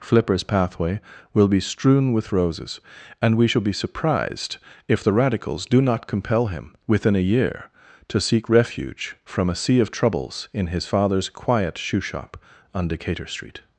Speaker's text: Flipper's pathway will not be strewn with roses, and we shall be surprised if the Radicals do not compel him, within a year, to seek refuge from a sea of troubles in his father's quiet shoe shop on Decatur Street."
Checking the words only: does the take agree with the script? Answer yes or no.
no